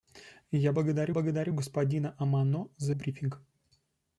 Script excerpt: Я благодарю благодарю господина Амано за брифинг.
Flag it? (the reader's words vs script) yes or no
no